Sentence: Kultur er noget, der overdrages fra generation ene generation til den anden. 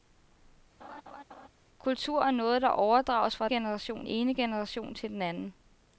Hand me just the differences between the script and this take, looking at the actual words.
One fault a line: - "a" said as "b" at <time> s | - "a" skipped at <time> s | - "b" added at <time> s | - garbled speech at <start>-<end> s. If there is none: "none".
none